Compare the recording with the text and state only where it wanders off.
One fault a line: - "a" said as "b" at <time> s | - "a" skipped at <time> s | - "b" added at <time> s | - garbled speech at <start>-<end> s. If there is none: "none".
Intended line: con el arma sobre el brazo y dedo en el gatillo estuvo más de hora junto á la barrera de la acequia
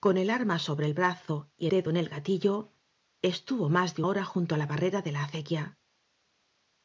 none